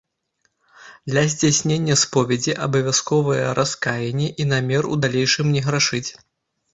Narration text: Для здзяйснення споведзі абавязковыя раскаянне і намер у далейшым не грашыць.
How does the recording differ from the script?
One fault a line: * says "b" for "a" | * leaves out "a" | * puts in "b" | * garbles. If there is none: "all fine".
all fine